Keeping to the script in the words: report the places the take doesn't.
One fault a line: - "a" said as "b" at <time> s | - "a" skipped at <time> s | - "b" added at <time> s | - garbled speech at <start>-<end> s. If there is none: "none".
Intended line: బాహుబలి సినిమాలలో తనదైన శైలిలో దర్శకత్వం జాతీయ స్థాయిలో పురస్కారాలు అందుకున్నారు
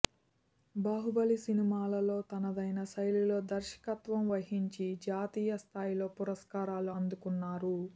- "వహించి" added at 4.3 s